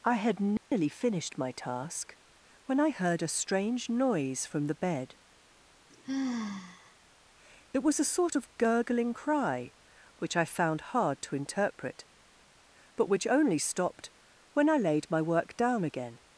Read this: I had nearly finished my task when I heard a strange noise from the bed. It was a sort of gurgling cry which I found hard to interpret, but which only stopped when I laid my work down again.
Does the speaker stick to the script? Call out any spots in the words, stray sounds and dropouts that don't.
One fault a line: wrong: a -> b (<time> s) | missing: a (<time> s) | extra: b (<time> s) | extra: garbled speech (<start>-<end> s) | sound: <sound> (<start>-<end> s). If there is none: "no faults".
sound: dropout (0.6-0.7 s)
sound: sigh (5.9-7.0 s)